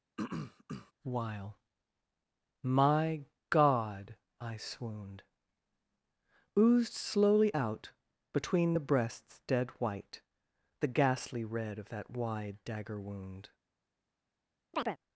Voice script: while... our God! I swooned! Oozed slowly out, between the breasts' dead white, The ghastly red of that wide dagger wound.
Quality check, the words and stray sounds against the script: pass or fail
fail